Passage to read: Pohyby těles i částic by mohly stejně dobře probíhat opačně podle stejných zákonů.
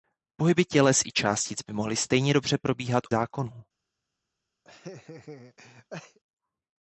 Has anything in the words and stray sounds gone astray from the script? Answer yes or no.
yes